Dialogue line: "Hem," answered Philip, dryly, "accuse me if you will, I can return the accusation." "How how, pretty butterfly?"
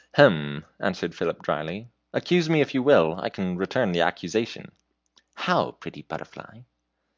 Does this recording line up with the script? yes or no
no